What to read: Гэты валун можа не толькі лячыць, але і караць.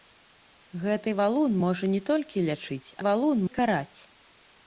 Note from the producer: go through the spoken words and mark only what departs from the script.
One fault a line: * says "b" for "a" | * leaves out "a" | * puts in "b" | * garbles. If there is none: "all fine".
* says "валун" for "але"